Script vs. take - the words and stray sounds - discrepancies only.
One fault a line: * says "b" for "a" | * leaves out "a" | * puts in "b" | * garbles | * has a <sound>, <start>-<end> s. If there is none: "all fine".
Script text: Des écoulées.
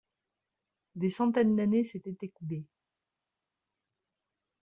* puts in "centaines d'années s'étaient"